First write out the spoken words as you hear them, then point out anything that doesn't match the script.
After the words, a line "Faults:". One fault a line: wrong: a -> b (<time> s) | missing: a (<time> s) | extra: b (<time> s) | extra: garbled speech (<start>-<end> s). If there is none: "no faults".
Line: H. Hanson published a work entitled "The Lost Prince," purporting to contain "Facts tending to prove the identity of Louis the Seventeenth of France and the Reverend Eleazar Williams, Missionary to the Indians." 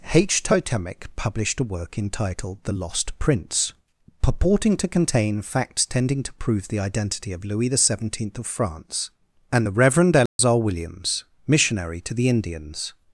H. Totemic published a work entitled "The Lost Prince," purporting to contain "Facts tending to prove the identity of Louis the Seventeenth of France and the Reverend Eleazar Williams, Missionary to the Indians."
Faults:
wrong: Hanson -> Totemic (0.4 s)